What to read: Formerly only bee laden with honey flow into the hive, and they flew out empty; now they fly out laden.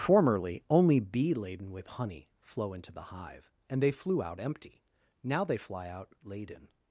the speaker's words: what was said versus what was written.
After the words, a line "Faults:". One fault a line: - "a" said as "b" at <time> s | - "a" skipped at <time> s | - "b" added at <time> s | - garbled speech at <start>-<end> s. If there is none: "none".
Formerly only bee laden with honey flow into the hive, and they flew out empty; now they fly out laden.
Faults:
none